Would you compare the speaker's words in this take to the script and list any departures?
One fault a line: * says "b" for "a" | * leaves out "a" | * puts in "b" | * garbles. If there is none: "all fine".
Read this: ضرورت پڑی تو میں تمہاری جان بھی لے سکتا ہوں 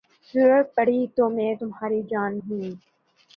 * leaves out "بھی لے سکتا"